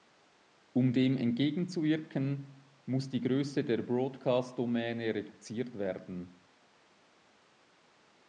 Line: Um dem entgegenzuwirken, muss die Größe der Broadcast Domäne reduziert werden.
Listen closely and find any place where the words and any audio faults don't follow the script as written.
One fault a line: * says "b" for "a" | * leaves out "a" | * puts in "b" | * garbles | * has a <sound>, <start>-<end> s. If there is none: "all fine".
all fine